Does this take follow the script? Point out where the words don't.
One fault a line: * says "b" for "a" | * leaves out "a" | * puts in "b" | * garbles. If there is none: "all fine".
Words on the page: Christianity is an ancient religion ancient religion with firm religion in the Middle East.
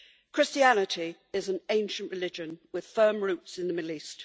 * leaves out "ancient religion"
* says "roots" for "religion"